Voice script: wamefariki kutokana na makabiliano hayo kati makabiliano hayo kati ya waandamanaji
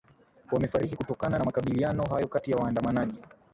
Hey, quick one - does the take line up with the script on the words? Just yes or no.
no